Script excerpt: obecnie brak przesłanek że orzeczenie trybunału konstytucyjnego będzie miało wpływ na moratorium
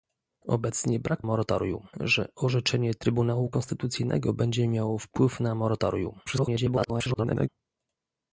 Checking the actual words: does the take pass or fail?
fail